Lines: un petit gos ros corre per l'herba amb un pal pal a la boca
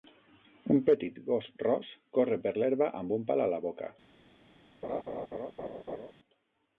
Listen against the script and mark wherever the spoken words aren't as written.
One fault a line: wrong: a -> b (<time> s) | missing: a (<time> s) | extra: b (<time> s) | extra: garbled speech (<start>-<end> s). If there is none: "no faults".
missing: pal (3.5 s)